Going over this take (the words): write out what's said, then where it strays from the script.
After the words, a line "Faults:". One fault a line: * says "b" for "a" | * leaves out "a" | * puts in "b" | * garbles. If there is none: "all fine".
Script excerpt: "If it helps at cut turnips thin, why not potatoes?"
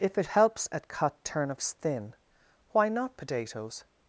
"If it helps at cut turnips thin, why not potatoes?"
Faults:
all fine